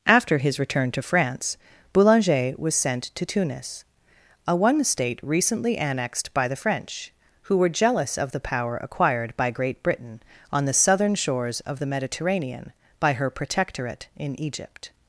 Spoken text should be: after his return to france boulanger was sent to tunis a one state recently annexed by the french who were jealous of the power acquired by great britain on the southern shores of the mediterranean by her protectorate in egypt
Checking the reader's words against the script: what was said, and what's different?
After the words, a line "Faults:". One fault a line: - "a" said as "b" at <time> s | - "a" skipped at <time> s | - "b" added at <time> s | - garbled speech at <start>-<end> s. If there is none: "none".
after his return to france boulanger was sent to tunis a one state recently annexed by the french who were jealous of the power acquired by great britain on the southern shores of the mediterranean by her protectorate in egypt
Faults:
none